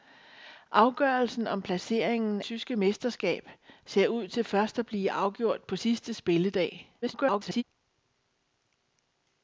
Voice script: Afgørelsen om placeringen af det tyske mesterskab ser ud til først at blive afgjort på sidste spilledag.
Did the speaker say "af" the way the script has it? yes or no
no